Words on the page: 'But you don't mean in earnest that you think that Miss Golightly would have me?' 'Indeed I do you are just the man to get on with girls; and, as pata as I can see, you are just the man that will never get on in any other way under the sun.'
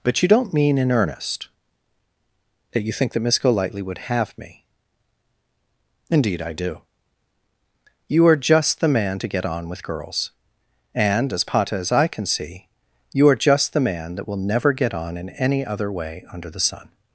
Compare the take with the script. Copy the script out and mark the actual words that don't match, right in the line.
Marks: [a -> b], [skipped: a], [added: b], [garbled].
'But you don't mean in earnest that you think that Miss Golightly would have me?' 'Indeed I do you are just the man to get on with girls; and, as pata as I can see, you are just the man that will never get on in any other way under the sun.'